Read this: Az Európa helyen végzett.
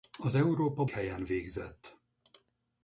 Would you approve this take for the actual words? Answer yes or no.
yes